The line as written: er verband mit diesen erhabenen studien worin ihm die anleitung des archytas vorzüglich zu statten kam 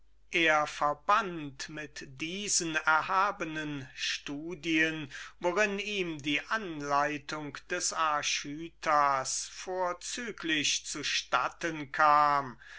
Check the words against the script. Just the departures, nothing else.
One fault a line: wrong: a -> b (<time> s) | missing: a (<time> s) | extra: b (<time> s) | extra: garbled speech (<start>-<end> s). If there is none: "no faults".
no faults